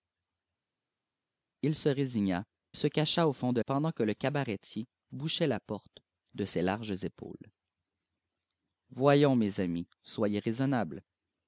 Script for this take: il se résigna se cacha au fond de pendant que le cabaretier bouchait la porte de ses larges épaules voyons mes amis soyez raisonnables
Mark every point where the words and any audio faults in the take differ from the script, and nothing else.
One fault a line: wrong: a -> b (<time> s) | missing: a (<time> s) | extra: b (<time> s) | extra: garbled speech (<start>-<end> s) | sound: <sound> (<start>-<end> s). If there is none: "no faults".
no faults